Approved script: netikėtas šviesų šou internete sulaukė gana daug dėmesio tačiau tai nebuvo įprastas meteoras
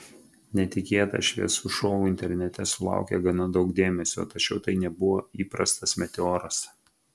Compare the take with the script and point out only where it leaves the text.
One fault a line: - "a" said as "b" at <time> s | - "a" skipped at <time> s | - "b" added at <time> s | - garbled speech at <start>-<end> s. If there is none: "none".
none